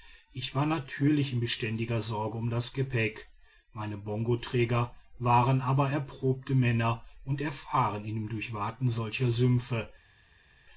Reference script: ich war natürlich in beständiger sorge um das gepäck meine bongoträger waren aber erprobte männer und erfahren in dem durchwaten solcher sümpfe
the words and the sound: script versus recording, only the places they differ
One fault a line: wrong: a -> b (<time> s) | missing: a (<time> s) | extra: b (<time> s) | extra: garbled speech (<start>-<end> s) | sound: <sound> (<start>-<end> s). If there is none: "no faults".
no faults